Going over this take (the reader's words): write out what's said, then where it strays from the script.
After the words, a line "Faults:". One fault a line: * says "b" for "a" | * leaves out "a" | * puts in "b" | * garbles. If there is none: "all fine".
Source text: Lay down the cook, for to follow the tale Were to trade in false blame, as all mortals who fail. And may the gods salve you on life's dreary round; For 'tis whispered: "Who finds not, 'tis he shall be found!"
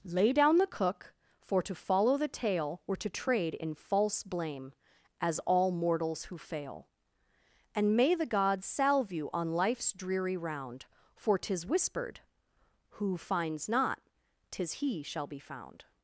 Lay down the cook, for to follow the tale Were to trade in false blame, as all mortals who fail. And may the gods salve you on life's dreary round; For 'tis whispered: "Who finds not, 'tis he shall be found!"
Faults:
all fine